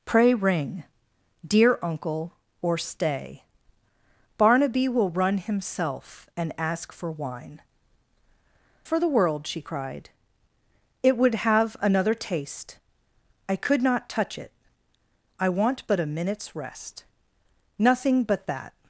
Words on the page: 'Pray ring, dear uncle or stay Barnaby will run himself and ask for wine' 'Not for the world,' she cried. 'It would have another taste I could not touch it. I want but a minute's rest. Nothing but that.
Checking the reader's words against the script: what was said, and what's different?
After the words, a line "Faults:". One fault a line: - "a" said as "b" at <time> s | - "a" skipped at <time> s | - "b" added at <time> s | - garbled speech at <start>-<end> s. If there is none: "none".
'Pray ring, dear uncle or stay Barnaby will run himself and ask for wine' 'For the world,' she cried. 'It would have another taste I could not touch it. I want but a minute's rest. Nothing but that.
Faults:
- "Not" skipped at 7.6 s